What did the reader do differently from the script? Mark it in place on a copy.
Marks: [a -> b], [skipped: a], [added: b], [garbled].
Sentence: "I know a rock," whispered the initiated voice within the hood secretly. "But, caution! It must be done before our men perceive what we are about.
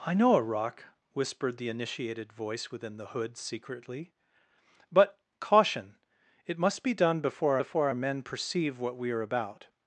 "I know a rock," whispered the initiated voice within the hood secretly. "But, caution! It must be done before [added: before] our men perceive what we are about.